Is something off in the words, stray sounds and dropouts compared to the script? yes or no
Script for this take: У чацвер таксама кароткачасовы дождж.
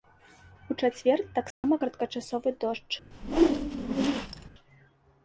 yes